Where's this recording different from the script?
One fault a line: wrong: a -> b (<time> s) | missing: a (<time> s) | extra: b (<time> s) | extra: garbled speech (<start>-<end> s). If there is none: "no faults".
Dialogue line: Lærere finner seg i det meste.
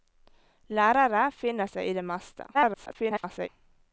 extra: garbled speech (2.5-3.5 s)